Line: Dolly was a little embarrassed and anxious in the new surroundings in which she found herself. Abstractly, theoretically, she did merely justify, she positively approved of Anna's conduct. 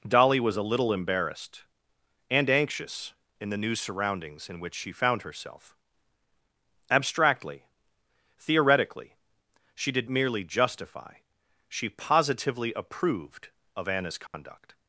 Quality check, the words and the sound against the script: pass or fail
fail